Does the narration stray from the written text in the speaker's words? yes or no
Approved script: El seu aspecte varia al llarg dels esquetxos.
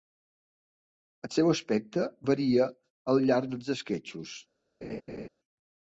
no